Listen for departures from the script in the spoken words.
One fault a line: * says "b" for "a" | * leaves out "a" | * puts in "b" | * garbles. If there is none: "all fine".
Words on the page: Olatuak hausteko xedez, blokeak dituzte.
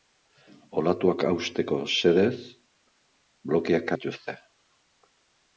all fine